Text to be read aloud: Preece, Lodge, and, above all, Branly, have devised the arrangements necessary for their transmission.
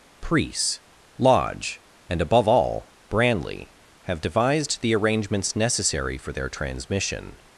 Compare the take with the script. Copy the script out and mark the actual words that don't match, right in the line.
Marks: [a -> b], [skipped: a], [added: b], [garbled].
Preece, Lodge, and, above all, Branly, have devised the arrangements necessary for their transmission.